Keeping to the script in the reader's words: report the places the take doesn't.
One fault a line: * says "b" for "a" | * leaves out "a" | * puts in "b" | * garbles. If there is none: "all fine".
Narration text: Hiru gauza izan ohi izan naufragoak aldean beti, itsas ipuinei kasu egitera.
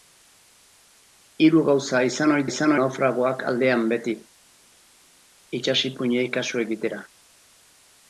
all fine